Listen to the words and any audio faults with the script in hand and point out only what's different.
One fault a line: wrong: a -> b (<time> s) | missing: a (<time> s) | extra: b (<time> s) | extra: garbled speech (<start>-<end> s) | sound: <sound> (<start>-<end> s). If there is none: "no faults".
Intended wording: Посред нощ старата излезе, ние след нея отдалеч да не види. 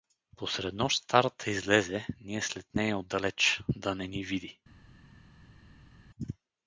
extra: ни (4.1 s)